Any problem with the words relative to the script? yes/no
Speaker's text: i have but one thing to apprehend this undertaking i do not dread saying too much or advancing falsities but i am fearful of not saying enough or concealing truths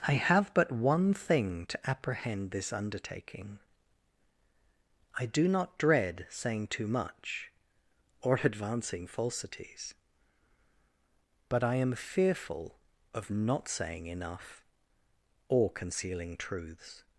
no